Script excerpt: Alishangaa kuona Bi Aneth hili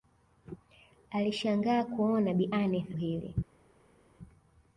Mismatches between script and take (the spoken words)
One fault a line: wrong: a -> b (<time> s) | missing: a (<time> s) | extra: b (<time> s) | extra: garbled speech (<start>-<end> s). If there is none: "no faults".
no faults